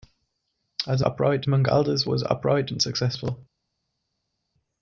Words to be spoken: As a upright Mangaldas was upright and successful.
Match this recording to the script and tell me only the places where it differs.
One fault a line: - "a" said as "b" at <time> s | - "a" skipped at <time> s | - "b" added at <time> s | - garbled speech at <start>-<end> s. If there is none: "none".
none